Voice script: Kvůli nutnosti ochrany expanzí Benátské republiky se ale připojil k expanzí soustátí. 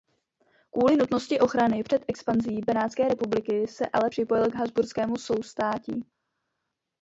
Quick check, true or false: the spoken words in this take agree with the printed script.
false